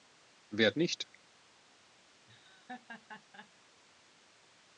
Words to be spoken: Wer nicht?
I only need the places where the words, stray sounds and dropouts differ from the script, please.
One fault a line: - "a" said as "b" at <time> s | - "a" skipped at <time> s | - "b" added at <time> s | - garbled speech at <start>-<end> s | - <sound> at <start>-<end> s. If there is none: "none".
- laugh at 2.3-3.5 s